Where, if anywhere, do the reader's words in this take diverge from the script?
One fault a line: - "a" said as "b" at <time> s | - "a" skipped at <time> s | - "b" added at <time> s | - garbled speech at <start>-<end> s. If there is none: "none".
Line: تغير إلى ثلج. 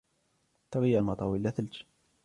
- "المطر" added at 1.0 s